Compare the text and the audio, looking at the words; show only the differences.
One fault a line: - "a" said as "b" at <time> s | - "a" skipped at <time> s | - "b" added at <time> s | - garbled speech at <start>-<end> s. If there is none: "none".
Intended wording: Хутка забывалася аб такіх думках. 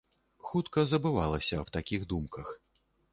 none